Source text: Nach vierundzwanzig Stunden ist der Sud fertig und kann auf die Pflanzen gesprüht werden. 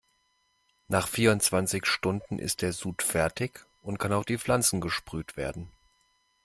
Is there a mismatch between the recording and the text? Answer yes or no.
no